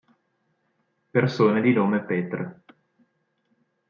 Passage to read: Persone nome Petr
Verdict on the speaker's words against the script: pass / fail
fail